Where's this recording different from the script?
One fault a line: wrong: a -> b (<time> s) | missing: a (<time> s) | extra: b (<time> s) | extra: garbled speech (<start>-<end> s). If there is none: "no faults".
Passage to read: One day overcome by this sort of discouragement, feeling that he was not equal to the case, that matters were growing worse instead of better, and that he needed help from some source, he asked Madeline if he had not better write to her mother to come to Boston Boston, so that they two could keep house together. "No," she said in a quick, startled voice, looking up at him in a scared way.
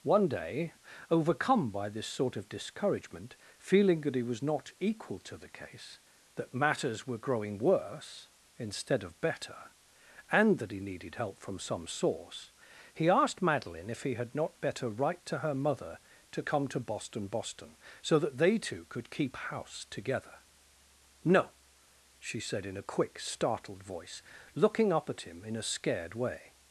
no faults